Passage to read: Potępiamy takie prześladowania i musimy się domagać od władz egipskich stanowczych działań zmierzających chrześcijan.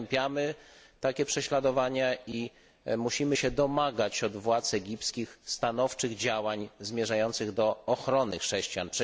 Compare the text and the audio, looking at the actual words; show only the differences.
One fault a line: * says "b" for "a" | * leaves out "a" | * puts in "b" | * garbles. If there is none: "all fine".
* puts in "do ochrony"